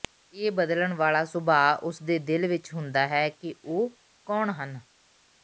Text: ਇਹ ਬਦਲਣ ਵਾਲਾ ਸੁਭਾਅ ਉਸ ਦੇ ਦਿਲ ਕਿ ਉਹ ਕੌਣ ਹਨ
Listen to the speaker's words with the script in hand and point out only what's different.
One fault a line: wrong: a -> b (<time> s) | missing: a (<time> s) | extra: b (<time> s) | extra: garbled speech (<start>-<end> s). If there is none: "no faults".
extra: ਵਿਚ ਹੁੰਦਾ ਹੈ (2.5 s)